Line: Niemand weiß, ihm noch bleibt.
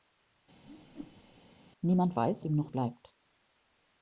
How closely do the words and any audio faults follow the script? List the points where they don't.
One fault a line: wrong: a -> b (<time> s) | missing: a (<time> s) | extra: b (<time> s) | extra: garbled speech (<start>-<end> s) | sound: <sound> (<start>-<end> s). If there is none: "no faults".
sound: whoosh (0.7-1.4 s)